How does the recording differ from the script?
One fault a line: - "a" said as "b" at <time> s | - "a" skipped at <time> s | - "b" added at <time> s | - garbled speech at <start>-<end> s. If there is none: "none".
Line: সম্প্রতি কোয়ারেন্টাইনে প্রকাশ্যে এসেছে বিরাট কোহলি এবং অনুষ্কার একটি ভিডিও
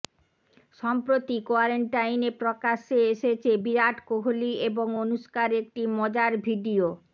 - "মজার" added at 6.0 s